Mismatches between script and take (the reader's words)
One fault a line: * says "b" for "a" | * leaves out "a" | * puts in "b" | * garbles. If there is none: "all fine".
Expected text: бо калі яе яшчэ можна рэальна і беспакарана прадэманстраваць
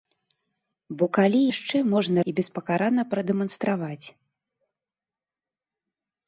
* leaves out "яе"
* leaves out "рэальна"